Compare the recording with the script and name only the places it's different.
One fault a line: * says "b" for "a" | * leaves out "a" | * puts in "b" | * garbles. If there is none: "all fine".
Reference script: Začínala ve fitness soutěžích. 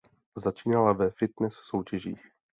all fine